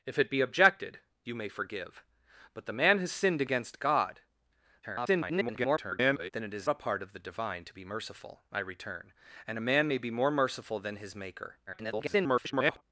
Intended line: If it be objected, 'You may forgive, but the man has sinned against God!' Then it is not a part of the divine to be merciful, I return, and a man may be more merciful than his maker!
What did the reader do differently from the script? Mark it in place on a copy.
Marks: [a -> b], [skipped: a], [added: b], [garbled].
If it be objected, 'You may forgive, but the man has sinned against God!' [garbled] Then it is [skipped: not] a part of the divine to be merciful, I return, and a man may be more merciful than his maker! [garbled]